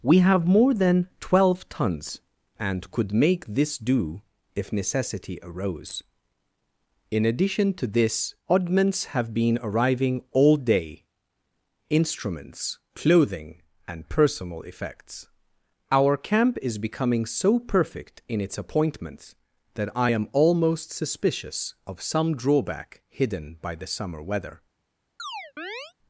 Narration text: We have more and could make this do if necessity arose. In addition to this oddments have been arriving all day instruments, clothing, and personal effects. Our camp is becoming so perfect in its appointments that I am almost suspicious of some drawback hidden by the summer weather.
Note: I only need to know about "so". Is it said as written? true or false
true